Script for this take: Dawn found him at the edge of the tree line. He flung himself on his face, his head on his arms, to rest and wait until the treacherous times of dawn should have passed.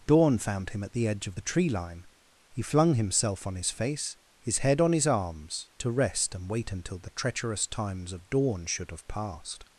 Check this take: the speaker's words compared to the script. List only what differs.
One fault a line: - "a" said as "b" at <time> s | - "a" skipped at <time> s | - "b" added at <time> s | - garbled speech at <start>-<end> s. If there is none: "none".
none